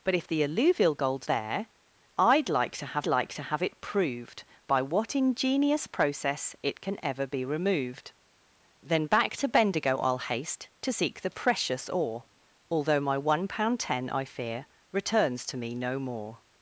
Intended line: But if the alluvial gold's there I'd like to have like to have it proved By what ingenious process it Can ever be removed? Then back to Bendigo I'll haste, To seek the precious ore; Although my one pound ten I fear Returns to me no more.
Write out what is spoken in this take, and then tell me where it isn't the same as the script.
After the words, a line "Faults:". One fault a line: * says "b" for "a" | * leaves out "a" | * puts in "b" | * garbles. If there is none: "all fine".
But if the alluvial gold's there I'd like to have like to have it proved By what ingenious process it Can ever be removed? Then back to Bendigo I'll haste, To seek the precious ore; Although my one pound ten I fear Returns to me no more.
Faults:
all fine